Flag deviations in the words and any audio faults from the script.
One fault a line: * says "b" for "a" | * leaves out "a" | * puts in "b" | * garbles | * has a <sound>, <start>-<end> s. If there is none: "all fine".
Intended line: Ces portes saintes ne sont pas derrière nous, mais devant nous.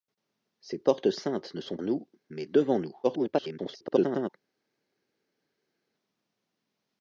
* leaves out "pas derrière"
* garbles